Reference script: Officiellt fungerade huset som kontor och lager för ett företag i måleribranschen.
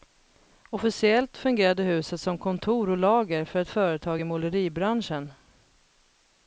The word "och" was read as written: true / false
true